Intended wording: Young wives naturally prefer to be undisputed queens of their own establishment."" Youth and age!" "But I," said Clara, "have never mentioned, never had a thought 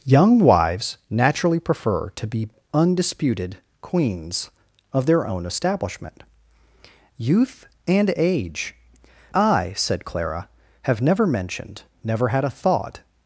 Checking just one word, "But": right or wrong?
wrong